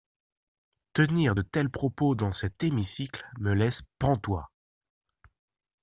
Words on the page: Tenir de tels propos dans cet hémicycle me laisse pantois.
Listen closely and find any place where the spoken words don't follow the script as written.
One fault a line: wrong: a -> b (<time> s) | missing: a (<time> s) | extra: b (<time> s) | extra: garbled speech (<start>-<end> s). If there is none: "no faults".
no faults